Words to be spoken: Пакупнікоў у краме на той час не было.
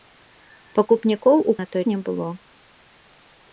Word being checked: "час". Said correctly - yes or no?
no